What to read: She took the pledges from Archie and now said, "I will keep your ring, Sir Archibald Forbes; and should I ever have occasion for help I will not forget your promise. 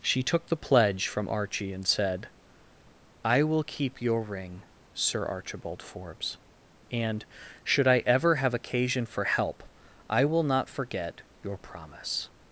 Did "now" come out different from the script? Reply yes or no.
yes